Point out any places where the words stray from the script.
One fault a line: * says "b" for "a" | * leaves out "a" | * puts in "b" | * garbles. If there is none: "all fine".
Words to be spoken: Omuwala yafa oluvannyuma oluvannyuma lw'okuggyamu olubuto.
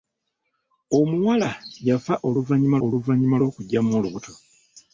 all fine